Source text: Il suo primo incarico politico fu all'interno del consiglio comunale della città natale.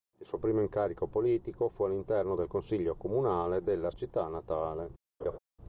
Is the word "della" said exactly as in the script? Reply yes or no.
yes